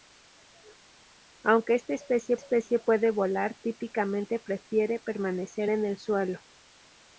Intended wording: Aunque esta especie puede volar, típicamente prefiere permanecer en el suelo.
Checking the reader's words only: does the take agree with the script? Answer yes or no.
no